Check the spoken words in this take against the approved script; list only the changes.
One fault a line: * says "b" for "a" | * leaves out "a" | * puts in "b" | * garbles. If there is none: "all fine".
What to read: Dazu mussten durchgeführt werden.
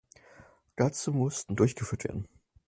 all fine